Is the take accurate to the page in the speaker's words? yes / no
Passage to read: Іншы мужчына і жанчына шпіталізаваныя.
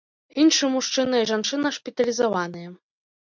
yes